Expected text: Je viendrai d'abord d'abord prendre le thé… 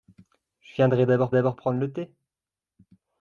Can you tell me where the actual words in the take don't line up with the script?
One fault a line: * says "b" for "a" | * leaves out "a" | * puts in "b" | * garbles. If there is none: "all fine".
all fine